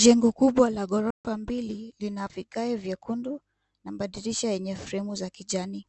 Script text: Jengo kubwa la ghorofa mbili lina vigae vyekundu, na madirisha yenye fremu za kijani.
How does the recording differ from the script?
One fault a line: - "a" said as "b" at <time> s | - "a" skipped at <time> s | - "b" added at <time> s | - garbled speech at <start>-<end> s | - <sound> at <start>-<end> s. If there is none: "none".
- dropout at 1.1-1.2 s